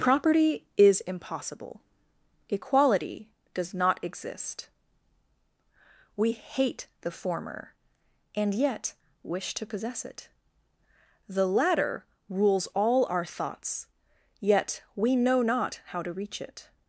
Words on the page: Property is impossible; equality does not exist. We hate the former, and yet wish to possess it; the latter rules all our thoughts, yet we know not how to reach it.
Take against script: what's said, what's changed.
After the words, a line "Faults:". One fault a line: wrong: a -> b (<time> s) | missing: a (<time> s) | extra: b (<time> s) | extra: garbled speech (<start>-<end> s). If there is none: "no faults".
Property is impossible; equality does not exist. We hate the former, and yet wish to possess it; the latter rules all our thoughts, yet we know not how to reach it.
Faults:
no faults